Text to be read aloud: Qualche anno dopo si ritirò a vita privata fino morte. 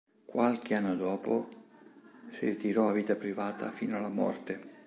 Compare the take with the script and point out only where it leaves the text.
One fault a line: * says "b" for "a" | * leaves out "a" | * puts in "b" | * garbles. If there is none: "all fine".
* puts in "alla"